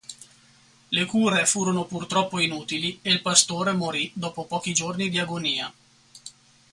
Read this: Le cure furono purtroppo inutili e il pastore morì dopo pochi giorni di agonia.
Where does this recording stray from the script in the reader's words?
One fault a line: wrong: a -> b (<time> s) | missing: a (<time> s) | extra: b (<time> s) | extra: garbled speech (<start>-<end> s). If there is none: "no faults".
no faults